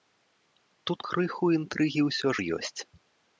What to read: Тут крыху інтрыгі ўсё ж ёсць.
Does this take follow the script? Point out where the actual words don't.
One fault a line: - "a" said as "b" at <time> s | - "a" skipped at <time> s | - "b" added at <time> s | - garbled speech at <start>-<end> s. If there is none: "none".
none